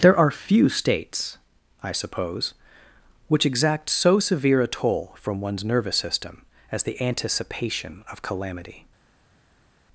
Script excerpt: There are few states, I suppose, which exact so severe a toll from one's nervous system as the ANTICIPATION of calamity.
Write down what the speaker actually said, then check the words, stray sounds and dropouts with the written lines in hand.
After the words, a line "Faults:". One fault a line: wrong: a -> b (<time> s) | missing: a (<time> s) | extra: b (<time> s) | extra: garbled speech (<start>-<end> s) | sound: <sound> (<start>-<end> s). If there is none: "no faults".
There are few states, I suppose, which exact so severe a toll from one's nervous system as the ANTICIPATION of calamity.
Faults:
no faults